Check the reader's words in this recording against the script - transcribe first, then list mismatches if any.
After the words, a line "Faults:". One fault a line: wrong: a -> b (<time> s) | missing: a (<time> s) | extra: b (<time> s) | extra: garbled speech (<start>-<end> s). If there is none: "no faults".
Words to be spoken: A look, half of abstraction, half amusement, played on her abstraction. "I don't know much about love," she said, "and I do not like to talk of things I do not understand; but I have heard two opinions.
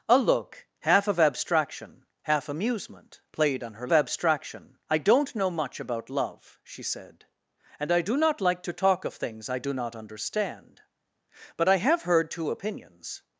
A look, half of abstraction, half amusement, played on her abstraction. "I don't know much about love," she said, "and I do not like to talk of things I do not understand; but I have heard two opinions.
Faults:
no faults